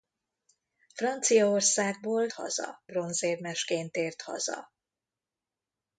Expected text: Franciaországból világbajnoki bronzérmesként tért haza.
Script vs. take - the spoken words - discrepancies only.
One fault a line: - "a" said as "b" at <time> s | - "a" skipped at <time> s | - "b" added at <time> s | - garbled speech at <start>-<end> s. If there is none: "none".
- "világbajnoki" said as "haza" at 2.3 s